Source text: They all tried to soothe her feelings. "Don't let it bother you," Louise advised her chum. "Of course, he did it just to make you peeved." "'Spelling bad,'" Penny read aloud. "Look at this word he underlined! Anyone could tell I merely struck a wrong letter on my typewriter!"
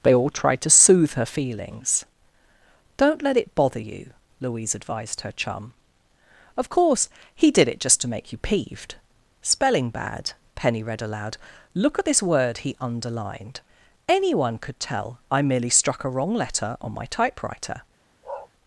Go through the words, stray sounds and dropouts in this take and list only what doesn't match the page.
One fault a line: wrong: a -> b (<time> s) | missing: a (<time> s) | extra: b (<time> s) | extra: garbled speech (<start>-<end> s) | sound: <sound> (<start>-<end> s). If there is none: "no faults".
sound: bark (18.2-18.5 s)